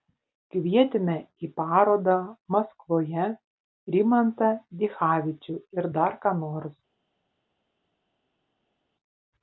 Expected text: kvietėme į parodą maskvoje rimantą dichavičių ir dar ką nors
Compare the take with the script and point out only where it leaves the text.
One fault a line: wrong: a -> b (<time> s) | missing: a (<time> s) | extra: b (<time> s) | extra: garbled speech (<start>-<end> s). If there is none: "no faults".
no faults